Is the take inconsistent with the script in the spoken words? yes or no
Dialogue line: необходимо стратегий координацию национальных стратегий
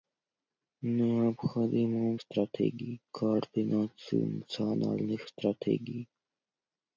no